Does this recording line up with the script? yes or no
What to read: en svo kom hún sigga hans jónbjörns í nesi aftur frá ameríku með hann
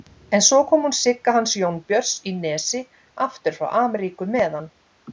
yes